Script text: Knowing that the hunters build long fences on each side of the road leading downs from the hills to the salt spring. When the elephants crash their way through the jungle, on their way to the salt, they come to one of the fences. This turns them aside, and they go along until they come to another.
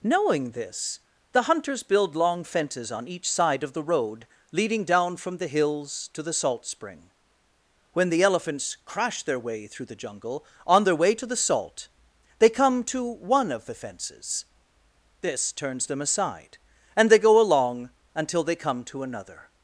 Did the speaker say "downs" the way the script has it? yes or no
no